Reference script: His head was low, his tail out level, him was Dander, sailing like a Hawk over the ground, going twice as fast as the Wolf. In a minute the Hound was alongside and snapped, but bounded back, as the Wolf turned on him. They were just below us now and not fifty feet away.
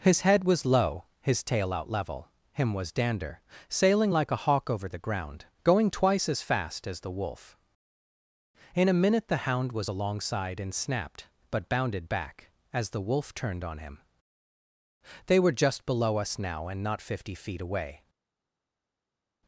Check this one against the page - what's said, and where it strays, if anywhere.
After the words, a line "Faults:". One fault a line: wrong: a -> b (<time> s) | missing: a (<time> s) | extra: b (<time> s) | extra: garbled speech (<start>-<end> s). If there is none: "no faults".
His head was low, his tail out level, him was Dander, sailing like a Hawk over the ground, going twice as fast as the Wolf. In a minute the Hound was alongside and snapped, but bounded back, as the Wolf turned on him. They were just below us now and not fifty feet away.
Faults:
no faults